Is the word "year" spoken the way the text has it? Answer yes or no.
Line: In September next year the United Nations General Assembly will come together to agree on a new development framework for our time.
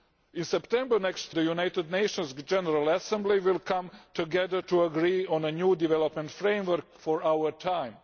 no